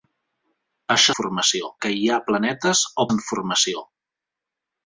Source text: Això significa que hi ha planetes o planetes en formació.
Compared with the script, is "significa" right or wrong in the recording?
wrong